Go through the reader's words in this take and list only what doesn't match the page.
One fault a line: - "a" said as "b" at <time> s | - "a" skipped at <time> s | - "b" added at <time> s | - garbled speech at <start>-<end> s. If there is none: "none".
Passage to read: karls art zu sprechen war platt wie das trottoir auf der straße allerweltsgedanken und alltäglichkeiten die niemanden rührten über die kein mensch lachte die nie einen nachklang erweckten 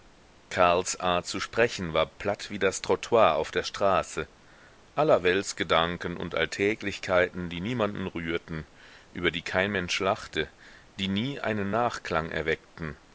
none